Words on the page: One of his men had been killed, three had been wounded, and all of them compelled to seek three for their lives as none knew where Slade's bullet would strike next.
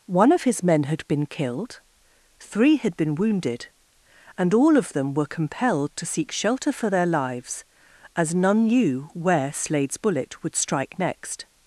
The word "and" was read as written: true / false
true